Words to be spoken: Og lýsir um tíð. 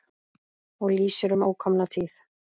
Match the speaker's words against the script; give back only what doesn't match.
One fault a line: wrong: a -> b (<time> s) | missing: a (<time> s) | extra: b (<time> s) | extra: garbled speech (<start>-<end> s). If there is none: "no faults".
extra: ókomna (1.5 s)